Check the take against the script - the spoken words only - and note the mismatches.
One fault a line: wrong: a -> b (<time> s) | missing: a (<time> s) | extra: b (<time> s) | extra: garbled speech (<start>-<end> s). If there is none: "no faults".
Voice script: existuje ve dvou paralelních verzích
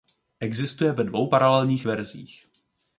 no faults